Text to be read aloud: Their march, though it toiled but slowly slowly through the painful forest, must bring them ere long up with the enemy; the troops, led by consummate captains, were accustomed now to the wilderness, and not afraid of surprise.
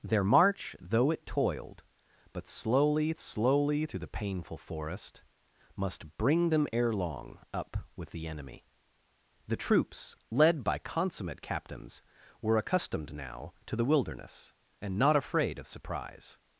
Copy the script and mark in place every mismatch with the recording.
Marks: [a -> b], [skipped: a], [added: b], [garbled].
Their march, though it toiled but slowly slowly through the painful forest, must bring them ere long up with the enemy; the troops, led by consummate captains, were accustomed now to the wilderness, and not afraid of surprise.